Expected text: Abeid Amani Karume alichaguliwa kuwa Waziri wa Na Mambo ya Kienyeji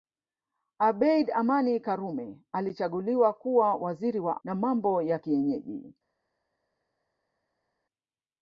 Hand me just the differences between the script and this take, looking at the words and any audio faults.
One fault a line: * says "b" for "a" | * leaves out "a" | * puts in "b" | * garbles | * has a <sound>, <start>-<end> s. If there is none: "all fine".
all fine